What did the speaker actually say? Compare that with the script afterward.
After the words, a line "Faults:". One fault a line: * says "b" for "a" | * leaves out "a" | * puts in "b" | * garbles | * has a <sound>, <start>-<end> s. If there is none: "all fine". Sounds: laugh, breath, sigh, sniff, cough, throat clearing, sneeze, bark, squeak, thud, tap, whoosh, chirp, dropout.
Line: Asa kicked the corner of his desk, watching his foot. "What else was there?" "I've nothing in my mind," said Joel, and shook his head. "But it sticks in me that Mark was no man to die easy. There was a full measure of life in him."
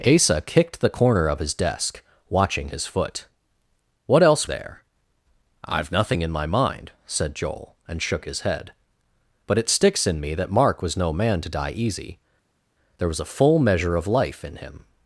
Asa kicked the corner of his desk, watching his foot. "What else there?" "I've nothing in my mind," said Joel, and shook his head. "But it sticks in me that Mark was no man to die easy. There was a full measure of life in him."
Faults:
* leaves out "was"